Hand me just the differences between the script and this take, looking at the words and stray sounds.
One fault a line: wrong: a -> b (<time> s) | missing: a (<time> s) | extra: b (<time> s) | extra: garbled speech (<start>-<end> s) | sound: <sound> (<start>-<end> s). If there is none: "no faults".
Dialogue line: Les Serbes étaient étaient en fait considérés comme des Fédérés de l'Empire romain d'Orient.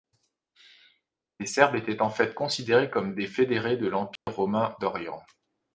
missing: étaient (2.0 s)
sound: dropout (4.2-4.3 s)